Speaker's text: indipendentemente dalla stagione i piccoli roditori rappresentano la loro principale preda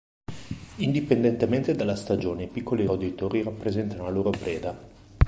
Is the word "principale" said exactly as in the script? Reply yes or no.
no